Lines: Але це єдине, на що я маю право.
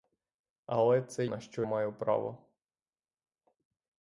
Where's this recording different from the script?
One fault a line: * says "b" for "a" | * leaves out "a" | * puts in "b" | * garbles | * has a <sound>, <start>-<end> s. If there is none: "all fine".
* leaves out "єдине"
* leaves out "я"